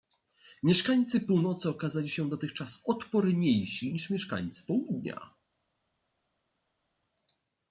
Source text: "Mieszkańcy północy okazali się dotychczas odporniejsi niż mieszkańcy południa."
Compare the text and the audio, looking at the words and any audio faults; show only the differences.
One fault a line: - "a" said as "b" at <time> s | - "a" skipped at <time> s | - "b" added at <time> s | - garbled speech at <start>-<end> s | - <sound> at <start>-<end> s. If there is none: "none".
none